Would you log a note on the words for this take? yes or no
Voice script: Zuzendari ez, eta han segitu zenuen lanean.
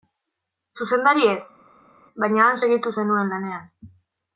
yes